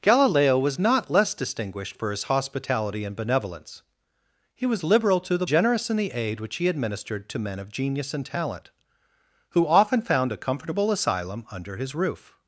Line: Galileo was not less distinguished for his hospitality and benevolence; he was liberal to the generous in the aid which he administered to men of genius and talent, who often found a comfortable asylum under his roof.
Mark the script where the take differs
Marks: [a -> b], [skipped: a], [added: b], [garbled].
Galileo was not less distinguished for his hospitality and benevolence; he was liberal to the generous in the aid which he administered to men of genius and talent, who often found a comfortable asylum under his roof.